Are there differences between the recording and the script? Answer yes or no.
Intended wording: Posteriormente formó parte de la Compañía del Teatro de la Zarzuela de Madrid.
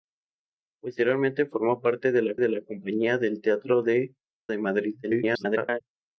yes